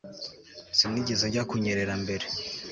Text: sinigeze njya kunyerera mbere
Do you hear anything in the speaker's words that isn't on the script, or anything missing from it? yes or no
no